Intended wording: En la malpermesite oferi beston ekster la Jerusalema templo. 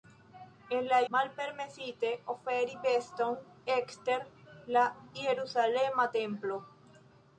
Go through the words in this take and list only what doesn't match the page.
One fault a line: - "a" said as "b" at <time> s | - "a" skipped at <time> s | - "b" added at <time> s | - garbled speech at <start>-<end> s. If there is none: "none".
none